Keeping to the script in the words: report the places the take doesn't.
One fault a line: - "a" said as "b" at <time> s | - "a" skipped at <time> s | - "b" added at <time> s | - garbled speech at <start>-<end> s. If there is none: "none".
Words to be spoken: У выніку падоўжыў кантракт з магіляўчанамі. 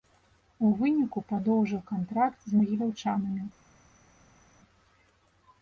none